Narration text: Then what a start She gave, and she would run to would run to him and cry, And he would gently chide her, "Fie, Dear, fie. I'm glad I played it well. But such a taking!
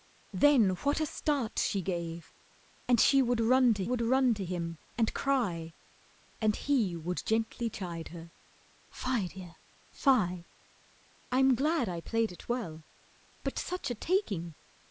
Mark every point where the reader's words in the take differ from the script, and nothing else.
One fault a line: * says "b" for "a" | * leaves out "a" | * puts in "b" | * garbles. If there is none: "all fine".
all fine